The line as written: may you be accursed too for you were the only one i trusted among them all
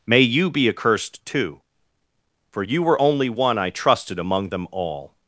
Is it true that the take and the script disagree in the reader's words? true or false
true